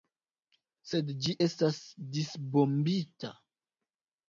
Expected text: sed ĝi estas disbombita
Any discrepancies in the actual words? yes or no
no